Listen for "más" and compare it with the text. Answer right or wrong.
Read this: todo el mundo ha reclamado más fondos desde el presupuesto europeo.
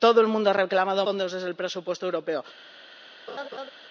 wrong